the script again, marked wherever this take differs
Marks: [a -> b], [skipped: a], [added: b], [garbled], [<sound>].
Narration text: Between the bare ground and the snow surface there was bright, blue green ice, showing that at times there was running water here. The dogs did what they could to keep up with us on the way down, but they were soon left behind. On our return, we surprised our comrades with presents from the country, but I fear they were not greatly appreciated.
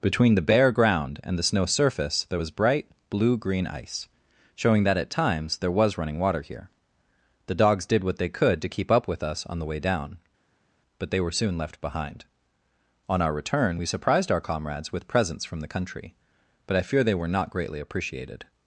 Between the bare ground and the snow surface there was bright, blue green ice, showing that at times there was running water here. The dogs did what they could to keep up with us on the way down, but they were soon left behind. On our return, we surprised our comrades with presents from the country, but I fear they were not greatly appreciated.